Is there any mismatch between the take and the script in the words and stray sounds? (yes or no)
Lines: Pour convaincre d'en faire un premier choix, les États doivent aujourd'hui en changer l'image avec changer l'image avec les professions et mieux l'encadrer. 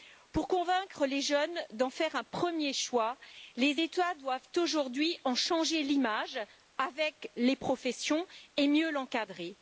yes